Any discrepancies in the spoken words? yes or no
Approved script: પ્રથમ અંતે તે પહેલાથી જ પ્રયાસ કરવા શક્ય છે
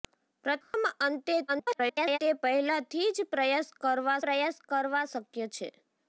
yes